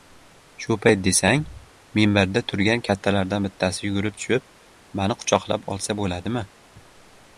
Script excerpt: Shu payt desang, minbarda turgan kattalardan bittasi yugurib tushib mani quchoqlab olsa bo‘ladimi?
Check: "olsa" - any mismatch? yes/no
no